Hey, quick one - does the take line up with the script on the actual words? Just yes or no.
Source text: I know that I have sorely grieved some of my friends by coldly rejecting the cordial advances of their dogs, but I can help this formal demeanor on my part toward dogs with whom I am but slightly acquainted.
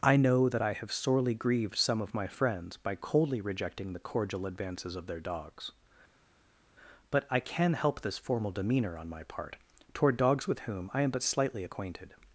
yes